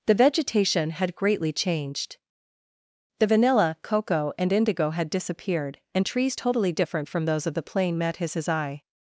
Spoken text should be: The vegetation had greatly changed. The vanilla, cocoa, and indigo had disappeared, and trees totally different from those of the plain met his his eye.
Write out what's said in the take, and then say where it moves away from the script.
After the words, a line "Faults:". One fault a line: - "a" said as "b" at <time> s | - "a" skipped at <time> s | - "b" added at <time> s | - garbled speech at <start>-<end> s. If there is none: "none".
The vegetation had greatly changed. The vanilla, cocoa, and indigo had disappeared, and trees totally different from those of the plain met his his eye.
Faults:
none